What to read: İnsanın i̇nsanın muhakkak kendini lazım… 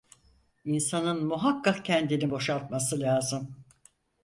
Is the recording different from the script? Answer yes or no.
yes